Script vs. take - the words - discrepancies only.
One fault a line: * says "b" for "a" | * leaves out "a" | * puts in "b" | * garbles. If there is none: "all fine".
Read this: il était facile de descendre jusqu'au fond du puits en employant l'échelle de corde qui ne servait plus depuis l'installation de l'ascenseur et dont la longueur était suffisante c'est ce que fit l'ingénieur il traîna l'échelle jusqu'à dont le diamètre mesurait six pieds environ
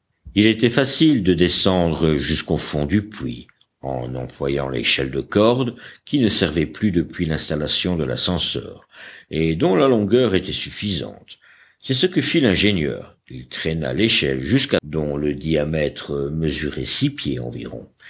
all fine